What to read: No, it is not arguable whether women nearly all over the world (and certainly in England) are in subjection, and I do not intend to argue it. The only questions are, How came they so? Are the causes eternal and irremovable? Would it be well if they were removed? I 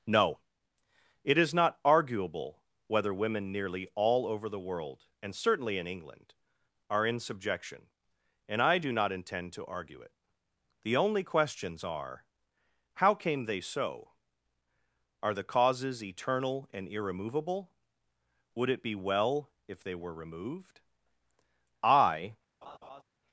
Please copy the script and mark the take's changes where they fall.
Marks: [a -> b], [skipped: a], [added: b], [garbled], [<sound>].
No, it is not arguable whether women nearly all over the world (and certainly in England) are in subjection, and I do not intend to argue it. The only questions are, How came they so? Are the causes eternal and irremovable? Would it be well if they were removed? I [laugh]